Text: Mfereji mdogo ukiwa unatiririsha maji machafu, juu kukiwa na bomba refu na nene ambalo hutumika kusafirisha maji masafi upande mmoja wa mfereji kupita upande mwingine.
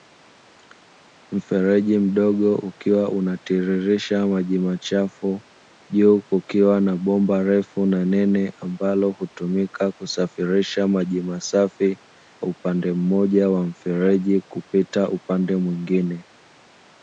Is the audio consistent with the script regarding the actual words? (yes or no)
yes